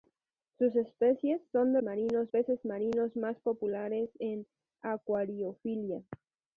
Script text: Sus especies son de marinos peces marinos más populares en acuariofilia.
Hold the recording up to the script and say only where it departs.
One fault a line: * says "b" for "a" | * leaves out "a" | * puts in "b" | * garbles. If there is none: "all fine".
all fine